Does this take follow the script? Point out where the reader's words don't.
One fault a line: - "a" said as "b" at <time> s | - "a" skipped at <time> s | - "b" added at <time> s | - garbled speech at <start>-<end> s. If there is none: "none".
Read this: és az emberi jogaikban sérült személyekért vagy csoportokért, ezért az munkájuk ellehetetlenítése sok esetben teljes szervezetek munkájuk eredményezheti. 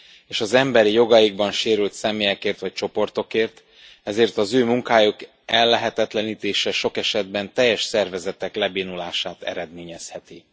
- "ő" added at 4.5 s
- "munkájuk" said as "lebénulását" at 8.5 s